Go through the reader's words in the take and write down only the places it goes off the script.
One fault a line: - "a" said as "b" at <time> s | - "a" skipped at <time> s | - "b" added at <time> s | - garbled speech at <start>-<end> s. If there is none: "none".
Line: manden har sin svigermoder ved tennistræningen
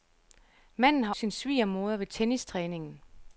none